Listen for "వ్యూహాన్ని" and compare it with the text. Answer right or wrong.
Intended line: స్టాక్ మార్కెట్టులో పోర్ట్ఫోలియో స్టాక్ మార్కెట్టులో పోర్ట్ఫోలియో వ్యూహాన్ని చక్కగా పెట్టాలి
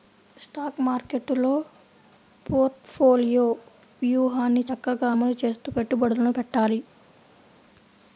wrong